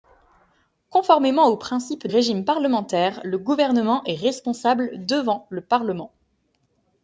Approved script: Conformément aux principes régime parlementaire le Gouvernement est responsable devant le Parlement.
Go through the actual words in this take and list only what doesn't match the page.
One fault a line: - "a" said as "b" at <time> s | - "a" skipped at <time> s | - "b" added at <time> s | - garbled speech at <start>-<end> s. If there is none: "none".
none